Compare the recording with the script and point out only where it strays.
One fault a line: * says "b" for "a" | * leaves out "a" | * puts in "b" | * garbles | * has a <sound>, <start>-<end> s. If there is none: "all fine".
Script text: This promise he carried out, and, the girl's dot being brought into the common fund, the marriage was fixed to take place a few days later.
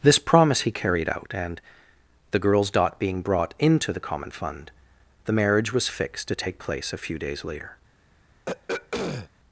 * has a throat clearing, 8.5-9.3 s